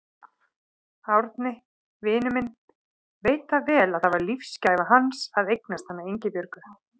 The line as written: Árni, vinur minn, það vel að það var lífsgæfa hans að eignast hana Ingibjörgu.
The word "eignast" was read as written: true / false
true